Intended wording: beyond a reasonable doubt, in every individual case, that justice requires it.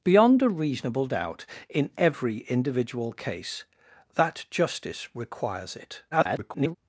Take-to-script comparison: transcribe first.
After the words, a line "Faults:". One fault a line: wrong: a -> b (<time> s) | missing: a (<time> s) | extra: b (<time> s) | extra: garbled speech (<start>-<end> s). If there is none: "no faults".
beyond a reasonable doubt, in every individual case, that justice requires it. [garbled]
Faults:
extra: garbled speech (6.1-6.8 s)